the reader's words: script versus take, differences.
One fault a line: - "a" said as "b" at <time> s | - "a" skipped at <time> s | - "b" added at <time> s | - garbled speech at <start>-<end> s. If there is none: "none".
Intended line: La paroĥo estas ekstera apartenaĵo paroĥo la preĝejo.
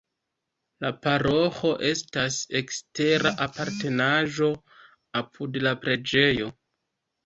- "paroĥo" said as "apud" at 5.3 s